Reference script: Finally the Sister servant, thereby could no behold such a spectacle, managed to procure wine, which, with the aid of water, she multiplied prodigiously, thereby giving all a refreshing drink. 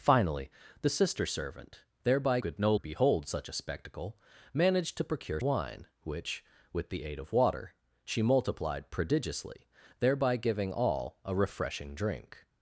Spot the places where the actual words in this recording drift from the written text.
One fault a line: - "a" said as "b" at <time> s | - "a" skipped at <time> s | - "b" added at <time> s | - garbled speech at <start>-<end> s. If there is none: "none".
none